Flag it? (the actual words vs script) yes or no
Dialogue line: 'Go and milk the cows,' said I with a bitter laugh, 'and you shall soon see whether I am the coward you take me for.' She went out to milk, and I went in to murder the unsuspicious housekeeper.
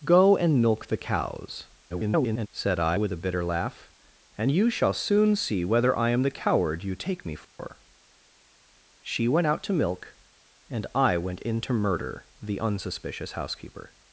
yes